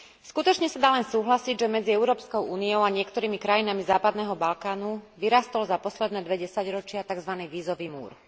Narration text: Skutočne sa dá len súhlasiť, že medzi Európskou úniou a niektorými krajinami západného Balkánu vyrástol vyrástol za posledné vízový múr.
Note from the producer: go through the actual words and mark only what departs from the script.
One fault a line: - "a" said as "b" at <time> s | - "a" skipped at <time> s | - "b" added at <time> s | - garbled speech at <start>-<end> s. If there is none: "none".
- "vyrástol" skipped at 5.6 s
- "dve desaťročia takzvaný" added at 6.2 s